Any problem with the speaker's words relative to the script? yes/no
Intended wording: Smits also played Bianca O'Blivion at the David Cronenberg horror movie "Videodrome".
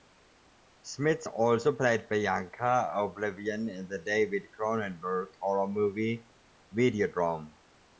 yes